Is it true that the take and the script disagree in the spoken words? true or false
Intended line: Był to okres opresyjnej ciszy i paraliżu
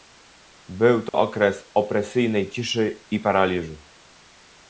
false